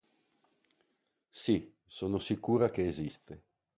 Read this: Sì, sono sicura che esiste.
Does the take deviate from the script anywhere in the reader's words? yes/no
no